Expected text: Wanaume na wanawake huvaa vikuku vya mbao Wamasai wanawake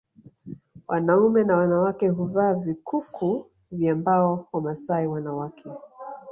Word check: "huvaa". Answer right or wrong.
right